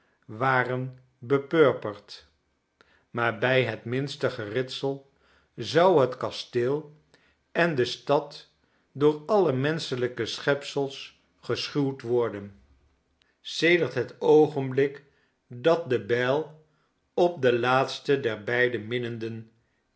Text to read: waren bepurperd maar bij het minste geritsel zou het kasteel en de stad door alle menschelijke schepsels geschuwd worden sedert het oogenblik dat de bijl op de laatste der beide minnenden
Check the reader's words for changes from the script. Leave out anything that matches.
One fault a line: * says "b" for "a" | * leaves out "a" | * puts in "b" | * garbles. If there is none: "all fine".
all fine